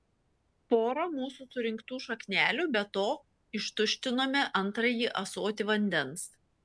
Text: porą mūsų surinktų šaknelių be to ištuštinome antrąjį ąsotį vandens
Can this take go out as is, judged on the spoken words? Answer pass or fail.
pass